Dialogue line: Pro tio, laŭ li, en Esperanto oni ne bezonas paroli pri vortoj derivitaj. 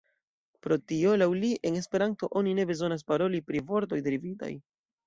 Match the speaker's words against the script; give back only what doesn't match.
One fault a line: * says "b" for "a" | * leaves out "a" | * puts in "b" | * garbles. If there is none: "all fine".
all fine